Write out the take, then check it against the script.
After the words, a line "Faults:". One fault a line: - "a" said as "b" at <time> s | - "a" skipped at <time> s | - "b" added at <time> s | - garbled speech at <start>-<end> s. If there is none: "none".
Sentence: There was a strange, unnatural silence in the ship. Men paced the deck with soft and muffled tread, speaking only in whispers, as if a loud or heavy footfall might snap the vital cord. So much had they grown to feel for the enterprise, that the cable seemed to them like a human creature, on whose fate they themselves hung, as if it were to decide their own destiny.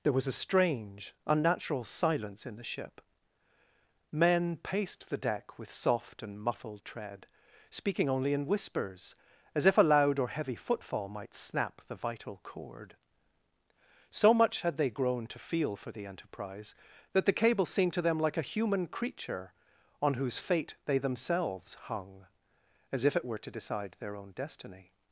There was a strange, unnatural silence in the ship. Men paced the deck with soft and muffled tread, speaking only in whispers, as if a loud or heavy footfall might snap the vital cord. So much had they grown to feel for the enterprise, that the cable seemed to them like a human creature, on whose fate they themselves hung, as if it were to decide their own destiny.
Faults:
none